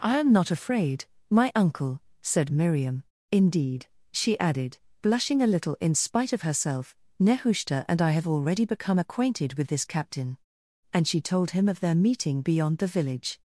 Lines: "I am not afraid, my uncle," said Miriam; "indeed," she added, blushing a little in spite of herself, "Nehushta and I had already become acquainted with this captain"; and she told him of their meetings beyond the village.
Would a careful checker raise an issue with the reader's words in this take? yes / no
yes